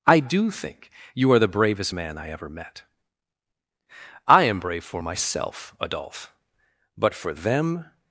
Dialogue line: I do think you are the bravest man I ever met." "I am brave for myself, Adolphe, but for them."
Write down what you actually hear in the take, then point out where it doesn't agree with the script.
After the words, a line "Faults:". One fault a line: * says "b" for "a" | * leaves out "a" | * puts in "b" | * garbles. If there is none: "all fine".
I do think you are the bravest man I ever met." "I am brave for myself, Adolphe, but for them."
Faults:
all fine